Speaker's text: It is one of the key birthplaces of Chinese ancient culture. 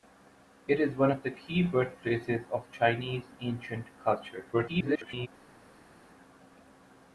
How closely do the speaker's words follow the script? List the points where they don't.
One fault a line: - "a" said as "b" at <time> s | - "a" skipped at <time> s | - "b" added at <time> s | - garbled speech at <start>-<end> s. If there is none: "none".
- garbled speech at 4.5-5.3 s